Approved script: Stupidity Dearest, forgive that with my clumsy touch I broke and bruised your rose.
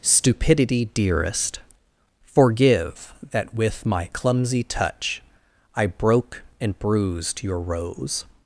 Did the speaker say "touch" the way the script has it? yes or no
yes